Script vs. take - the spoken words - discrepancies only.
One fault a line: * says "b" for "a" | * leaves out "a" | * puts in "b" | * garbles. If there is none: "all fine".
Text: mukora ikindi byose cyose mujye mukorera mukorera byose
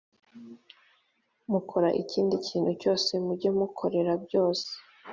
* says "kintu" for "byose"
* leaves out "mukorera"